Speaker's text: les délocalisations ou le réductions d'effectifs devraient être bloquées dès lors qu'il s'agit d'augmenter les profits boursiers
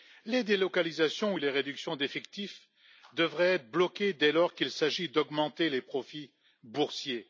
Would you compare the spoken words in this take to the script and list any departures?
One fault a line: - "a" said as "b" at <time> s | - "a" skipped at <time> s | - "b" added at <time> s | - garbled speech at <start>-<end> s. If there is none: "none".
- "le" said as "les" at 1.4 s